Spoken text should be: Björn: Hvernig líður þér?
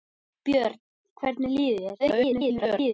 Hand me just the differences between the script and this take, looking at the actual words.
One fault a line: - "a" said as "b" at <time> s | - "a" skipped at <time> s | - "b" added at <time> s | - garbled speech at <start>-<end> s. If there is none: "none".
- garbled speech at 2.0-2.9 s